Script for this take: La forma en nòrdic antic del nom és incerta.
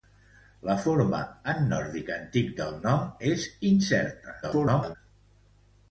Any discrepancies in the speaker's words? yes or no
yes